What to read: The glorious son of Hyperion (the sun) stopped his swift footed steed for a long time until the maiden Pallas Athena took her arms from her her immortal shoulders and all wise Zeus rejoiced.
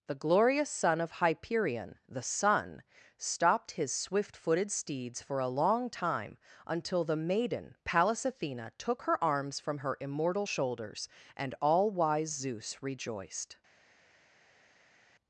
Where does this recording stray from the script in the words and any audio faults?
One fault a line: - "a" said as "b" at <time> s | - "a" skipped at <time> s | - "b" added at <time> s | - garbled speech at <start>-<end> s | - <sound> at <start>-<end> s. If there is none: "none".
- "steed" said as "steeds" at 4.7 s
- "her" skipped at 10.0 s